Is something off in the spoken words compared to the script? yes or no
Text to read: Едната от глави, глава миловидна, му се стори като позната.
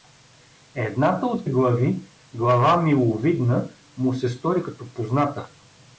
no